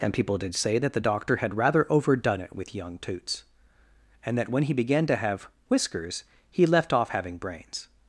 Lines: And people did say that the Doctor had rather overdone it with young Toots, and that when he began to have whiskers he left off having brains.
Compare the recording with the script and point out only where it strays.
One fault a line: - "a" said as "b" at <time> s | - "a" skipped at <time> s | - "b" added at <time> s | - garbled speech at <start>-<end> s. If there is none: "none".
none